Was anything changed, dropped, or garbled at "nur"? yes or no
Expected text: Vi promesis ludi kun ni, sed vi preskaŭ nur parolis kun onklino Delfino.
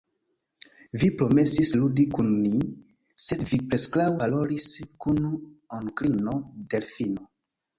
yes